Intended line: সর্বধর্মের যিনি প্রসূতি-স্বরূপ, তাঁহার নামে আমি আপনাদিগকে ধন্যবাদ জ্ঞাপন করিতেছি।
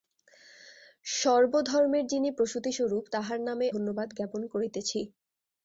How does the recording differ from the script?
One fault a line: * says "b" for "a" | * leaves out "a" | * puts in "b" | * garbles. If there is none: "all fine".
* leaves out "আমি আপনাদিগকে"